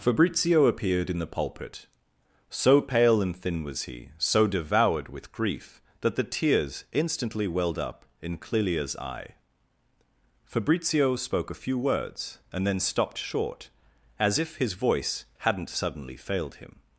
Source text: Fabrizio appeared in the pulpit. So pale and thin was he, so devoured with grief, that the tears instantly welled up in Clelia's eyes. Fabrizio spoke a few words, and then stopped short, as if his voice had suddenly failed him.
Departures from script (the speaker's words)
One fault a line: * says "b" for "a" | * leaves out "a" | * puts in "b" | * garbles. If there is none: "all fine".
* says "eye" for "eyes"
* says "hadn't" for "had"